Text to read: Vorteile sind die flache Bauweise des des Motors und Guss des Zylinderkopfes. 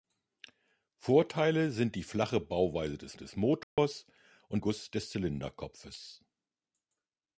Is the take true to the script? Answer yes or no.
yes